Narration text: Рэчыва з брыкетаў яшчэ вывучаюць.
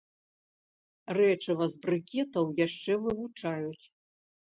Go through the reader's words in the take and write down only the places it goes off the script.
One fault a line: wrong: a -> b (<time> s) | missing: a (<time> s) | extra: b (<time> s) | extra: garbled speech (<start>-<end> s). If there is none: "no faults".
no faults